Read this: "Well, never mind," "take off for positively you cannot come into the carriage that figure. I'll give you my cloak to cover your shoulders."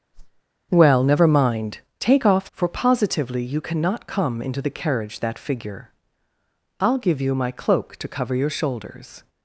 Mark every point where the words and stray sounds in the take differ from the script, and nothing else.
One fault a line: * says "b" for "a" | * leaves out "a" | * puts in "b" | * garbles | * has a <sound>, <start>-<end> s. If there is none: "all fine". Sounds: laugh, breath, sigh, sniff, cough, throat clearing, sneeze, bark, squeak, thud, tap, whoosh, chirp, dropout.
* has a whoosh, 0.1-0.4 s